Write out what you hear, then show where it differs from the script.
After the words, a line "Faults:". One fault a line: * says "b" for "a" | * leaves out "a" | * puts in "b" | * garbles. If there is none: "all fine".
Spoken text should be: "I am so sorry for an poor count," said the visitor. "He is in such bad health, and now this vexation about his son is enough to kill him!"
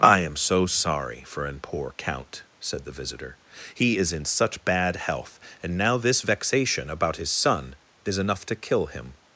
"I am so sorry for an poor count," said the visitor. "He is in such bad health, and now this vexation about his son is enough to kill him!"
Faults:
all fine